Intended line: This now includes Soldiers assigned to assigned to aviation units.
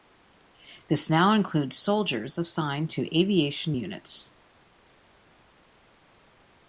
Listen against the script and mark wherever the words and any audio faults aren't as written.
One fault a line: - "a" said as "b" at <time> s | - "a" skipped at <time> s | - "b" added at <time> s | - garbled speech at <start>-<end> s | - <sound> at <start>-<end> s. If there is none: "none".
- "assigned to" skipped at 3.1 s